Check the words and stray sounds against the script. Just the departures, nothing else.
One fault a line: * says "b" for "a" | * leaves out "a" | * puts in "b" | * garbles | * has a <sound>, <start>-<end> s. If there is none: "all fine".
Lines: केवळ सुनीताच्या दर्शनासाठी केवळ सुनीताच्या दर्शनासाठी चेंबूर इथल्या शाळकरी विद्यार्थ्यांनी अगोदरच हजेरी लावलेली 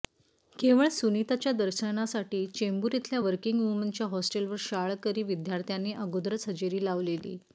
* says "चेंबूर इथल्या वर्किंग वुमनच्या हॉस्टेलवर" for "केवळ सुनीताच्या दर्शनासाठी चेंबूर इथल्या"